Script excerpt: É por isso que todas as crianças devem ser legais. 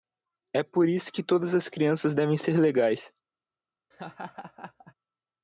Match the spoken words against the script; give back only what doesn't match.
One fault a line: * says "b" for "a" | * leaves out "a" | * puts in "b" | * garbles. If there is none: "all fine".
all fine